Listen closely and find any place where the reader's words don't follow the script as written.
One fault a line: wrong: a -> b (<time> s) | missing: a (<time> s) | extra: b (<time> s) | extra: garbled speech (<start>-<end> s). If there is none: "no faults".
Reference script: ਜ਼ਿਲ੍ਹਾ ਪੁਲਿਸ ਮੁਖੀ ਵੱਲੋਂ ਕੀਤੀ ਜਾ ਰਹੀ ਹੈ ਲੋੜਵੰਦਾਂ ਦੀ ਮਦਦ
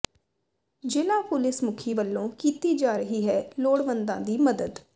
no faults